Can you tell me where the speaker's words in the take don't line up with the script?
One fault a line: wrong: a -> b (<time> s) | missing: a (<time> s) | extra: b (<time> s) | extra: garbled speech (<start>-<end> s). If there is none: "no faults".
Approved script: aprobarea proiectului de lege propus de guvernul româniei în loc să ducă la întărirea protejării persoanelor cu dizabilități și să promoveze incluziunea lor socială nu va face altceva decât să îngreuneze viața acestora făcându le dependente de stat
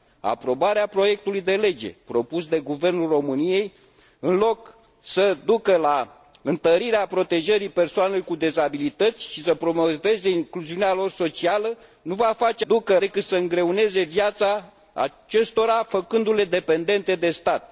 wrong: altceva -> ducă (12.7 s)